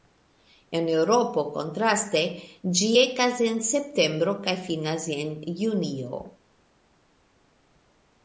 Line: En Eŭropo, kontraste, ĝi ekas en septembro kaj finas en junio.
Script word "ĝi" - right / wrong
right